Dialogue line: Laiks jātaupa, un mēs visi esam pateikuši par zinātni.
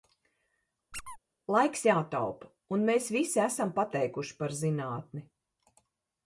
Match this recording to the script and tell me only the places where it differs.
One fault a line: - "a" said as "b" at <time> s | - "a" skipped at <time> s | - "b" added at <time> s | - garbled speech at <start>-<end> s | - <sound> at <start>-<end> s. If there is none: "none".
- squeak at 0.9-1.2 s